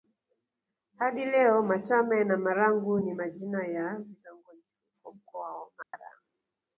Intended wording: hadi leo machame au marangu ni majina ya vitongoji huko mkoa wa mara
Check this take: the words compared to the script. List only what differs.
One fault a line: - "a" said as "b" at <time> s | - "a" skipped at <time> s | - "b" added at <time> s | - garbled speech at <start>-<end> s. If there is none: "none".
- "au" said as "na" at 2.2 s